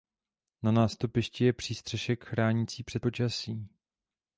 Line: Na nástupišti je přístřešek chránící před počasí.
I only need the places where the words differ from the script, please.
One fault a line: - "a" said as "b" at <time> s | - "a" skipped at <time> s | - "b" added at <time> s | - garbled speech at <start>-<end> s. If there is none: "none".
none